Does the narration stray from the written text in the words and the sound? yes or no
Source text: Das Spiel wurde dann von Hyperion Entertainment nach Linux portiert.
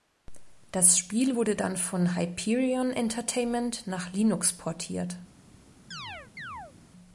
yes